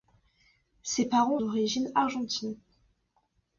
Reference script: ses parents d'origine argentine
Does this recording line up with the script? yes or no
yes